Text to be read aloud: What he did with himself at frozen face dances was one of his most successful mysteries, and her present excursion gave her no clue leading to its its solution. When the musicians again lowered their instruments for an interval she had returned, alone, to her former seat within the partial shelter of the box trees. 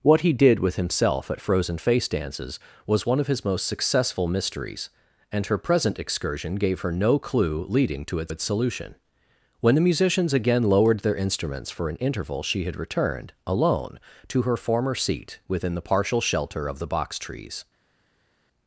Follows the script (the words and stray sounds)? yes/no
yes